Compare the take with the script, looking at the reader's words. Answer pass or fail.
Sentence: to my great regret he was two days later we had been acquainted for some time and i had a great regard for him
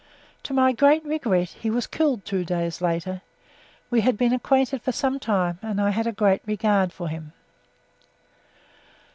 fail